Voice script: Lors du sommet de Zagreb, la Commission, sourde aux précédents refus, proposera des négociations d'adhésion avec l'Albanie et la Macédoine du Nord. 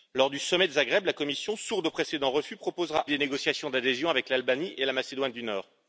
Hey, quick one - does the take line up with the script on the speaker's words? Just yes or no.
yes